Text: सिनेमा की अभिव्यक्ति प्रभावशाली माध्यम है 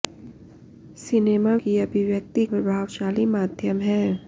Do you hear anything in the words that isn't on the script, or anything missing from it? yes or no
no